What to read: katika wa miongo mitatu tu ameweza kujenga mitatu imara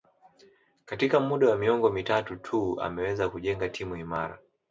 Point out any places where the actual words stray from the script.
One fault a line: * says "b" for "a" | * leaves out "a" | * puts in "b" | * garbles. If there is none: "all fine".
* puts in "muda"
* says "timu" for "mitatu"